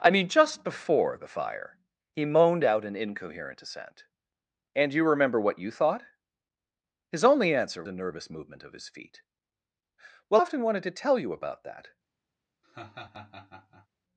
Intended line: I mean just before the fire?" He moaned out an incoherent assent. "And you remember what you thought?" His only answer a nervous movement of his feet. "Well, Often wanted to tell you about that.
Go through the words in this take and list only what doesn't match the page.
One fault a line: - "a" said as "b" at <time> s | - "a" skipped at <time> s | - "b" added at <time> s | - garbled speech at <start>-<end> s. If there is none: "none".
none